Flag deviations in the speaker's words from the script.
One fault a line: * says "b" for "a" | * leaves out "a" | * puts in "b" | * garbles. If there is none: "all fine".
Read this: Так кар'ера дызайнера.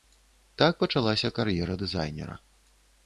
* puts in "пачалася"